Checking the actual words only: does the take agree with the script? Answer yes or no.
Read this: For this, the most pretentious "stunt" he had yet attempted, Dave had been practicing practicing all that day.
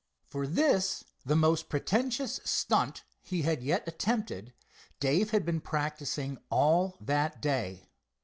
no